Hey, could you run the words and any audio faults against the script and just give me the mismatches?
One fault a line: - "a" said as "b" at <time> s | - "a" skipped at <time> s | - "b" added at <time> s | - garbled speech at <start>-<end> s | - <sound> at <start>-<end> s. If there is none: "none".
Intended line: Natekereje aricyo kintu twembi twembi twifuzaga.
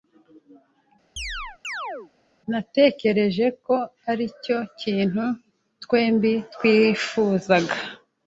- chirp at 1.2-2.1 s
- "ko" added at 3.7 s
- "twembi" skipped at 6.3 s